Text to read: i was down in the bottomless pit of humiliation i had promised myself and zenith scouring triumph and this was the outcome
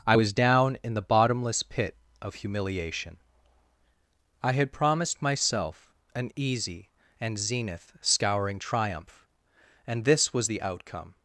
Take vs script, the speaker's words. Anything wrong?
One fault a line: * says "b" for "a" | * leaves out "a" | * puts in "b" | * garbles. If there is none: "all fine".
* puts in "an easy"